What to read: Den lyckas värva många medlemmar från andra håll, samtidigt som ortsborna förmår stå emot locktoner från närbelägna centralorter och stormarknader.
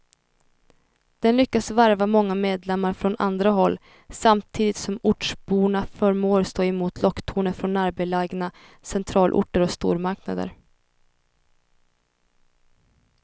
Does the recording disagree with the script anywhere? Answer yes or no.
no